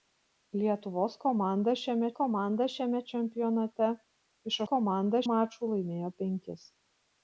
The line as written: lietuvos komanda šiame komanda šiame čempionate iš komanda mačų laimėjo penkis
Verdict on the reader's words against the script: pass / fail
pass